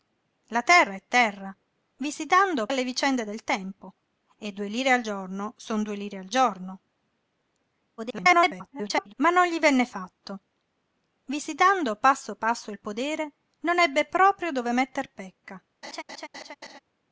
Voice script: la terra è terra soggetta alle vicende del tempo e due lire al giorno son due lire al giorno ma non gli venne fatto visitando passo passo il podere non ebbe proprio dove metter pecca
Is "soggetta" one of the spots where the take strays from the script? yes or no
yes